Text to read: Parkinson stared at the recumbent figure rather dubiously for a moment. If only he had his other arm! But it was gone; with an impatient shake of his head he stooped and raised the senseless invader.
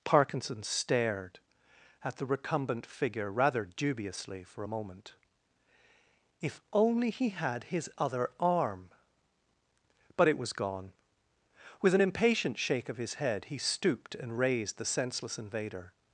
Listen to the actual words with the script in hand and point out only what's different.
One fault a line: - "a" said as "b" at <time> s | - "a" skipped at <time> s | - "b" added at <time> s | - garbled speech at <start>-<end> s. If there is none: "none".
none